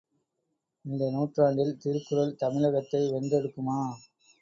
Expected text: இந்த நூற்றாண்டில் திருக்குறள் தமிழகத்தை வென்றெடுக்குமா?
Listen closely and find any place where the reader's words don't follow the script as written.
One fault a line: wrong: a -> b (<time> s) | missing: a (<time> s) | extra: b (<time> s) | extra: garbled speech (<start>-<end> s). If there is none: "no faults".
no faults